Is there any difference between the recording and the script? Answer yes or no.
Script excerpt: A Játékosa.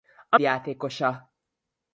no